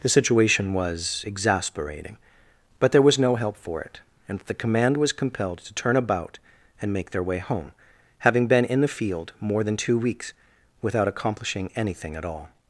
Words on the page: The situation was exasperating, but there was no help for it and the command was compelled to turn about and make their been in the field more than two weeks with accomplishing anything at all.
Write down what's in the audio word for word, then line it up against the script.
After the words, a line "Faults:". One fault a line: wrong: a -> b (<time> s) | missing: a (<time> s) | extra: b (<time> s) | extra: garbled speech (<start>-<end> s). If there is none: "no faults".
The situation was exasperating, but there was no help for it and the command was compelled to turn about and make their way home, having been in the field more than two weeks without accomplishing anything at all.
Faults:
extra: way home having (7.2 s)
wrong: with -> without (10.8 s)